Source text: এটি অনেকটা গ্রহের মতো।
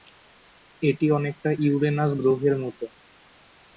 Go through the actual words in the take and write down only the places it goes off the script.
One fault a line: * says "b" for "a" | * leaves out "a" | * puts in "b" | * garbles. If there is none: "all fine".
* puts in "ইউরেনাস"